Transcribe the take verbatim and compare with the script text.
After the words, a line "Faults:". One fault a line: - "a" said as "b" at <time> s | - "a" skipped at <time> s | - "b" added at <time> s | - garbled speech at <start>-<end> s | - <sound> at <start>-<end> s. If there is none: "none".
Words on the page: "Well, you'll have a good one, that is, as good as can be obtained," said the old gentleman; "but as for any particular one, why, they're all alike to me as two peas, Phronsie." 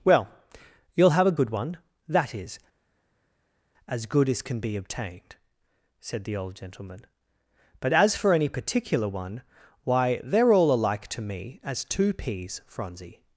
"Well, you'll have a good one, that is, as good as can be obtained," said the old gentleman; "but as for any particular one, why, they're all alike to me as two peas, Phronsie."
Faults:
none